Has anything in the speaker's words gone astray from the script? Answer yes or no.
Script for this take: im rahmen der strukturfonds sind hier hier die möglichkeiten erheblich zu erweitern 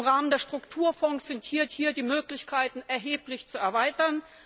no